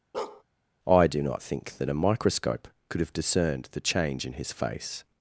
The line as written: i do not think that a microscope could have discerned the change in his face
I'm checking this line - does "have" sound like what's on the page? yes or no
yes